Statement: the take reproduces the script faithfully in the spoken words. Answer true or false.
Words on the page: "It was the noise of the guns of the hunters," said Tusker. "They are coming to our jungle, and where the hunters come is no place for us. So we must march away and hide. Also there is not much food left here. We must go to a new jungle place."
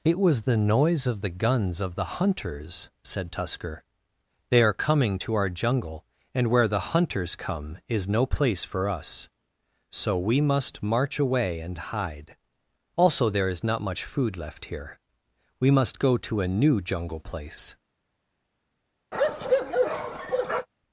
true